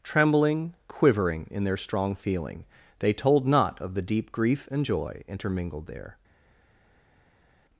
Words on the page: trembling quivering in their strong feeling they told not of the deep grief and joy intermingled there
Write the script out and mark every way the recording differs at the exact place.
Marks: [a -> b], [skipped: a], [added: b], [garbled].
trembling quivering in their strong feeling they told not of the deep grief and joy intermingled there